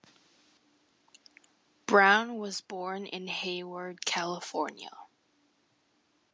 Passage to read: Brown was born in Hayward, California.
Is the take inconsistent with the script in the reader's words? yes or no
no